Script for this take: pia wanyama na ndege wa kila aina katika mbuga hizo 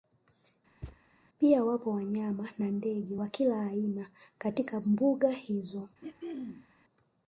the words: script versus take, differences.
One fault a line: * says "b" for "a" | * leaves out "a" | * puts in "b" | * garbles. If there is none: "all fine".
* puts in "wapo"